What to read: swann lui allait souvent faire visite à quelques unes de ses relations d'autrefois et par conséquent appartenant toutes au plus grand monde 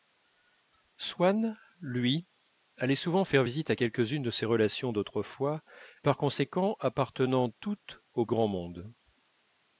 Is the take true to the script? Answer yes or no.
no